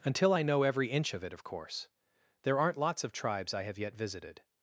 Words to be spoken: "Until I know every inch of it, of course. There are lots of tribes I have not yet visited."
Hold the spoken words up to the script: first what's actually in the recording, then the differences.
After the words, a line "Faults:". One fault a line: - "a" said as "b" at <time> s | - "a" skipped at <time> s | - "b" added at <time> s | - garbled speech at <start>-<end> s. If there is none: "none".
"Until I know every inch of it, of course. There aren't lots of tribes I have yet visited."
Faults:
- "are" said as "aren't" at 2.6 s
- "not" skipped at 3.8 s